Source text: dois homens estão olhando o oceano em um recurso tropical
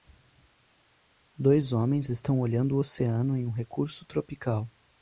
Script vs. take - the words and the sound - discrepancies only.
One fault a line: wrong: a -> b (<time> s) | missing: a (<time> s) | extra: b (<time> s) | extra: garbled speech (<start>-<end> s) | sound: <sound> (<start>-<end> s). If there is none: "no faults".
no faults